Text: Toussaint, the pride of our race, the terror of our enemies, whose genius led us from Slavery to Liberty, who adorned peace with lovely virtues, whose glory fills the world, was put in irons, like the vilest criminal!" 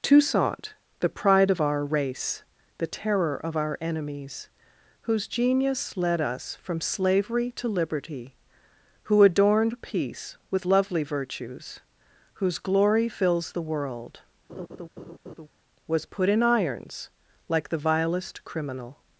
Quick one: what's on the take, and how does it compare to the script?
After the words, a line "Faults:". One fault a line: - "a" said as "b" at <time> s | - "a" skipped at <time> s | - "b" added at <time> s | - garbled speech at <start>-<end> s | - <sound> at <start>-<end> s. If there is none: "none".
Toussaint, the pride of our race, the terror of our enemies, whose genius led us from Slavery to Liberty, who adorned peace with lovely virtues, whose glory fills the world, was put in irons, like the vilest criminal!"
Faults:
- laugh at 14.5-15.5 s